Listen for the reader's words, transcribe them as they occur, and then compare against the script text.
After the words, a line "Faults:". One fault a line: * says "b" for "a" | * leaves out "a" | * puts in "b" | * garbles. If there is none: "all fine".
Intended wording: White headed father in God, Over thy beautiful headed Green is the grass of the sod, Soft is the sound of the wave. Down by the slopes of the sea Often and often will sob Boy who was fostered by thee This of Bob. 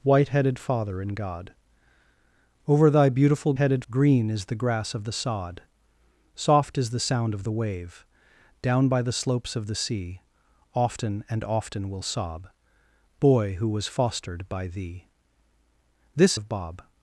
White headed father in God, Over thy beautiful headed Green is the grass of the sod, Soft is the sound of the wave. Down by the slopes of the sea Often and often will sob Boy who was fostered by thee This of Bob.
Faults:
all fine